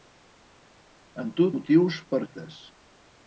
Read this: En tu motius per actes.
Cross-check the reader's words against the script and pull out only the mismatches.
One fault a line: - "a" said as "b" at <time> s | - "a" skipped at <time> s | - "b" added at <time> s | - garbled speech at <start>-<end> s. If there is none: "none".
none